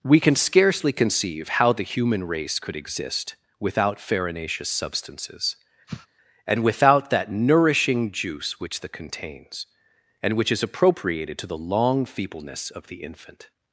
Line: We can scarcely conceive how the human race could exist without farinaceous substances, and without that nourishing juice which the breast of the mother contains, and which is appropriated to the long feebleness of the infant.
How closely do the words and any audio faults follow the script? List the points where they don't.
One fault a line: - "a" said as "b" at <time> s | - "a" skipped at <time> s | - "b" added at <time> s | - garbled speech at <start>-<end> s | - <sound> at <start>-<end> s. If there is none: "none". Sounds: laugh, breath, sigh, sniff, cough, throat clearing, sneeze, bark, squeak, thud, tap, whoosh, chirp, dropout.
- sniff at 5.9-6.1 s
- "breast of the mother" skipped at 8.9 s